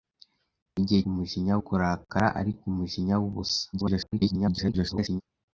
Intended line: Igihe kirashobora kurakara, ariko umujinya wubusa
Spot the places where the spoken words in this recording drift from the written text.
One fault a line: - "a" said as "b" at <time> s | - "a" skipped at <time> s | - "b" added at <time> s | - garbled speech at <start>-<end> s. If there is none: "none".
- "kirashobora" said as "umujinya" at 1.1 s
- garbled speech at 3.7-5.2 s